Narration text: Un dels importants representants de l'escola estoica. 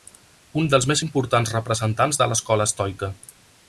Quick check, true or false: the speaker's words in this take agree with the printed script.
false